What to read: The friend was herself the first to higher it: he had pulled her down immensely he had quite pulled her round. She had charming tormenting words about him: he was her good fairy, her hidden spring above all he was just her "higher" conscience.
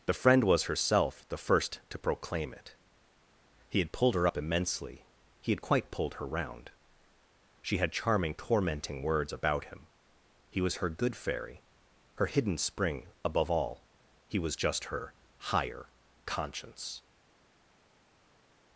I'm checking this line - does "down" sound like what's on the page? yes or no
no